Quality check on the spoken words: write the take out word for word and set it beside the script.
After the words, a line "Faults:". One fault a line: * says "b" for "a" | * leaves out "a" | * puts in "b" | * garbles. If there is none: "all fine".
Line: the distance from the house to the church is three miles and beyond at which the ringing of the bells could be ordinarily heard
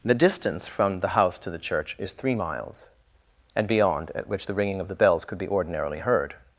the distance from the house to the church is three miles and beyond at which the ringing of the bells could be ordinarily heard
Faults:
all fine